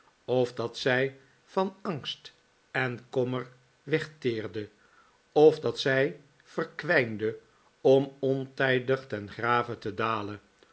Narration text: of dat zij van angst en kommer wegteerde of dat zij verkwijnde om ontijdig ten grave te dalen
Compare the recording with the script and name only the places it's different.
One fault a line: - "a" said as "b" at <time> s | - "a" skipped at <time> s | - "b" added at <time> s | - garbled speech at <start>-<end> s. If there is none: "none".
none